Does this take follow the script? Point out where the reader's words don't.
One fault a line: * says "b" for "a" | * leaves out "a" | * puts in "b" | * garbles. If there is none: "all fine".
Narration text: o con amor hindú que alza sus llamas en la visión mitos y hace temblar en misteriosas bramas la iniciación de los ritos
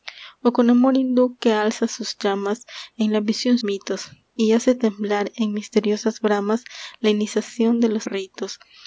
all fine